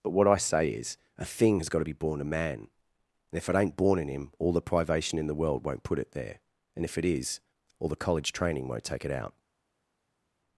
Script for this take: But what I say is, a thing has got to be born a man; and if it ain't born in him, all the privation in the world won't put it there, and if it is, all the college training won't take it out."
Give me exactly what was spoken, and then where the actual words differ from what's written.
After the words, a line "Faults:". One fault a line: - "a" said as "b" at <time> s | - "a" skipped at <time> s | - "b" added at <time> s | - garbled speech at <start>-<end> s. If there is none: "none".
But what I say is, a thing has got to be born a man; and if it ain't born in him, all the privation in the world won't put it there, and if it is, all the college training won't take it out."
Faults:
none